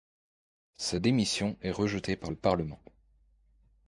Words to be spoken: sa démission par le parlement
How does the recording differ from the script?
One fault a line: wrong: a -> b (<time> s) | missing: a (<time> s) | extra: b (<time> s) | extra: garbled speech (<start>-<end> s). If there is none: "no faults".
extra: est rejetée (1.6 s)